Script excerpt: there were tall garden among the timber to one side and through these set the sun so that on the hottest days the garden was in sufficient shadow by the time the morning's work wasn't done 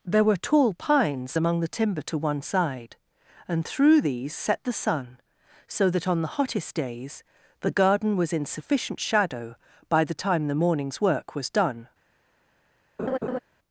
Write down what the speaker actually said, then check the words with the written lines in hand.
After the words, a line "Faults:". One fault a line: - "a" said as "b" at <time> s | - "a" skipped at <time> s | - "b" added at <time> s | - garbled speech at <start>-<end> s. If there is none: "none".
there were tall pines among the timber to one side and through these set the sun so that on the hottest days the garden was in sufficient shadow by the time the morning's work was done
Faults:
- "garden" said as "pines" at 0.7 s
- "wasn't" said as "was" at 11.3 s